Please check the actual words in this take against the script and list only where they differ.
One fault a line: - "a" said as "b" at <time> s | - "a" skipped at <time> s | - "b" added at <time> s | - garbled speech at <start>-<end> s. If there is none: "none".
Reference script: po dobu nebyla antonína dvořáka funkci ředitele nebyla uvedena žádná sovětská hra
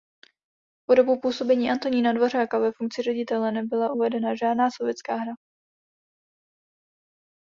- "nebyla" said as "působení" at 1.2 s
- "ve" added at 2.6 s